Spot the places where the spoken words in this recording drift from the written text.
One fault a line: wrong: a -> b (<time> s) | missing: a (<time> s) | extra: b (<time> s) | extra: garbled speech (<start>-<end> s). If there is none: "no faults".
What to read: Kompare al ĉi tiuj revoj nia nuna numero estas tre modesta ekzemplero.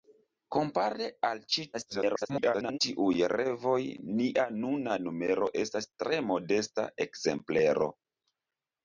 extra: garbled speech (1.7-2.8 s)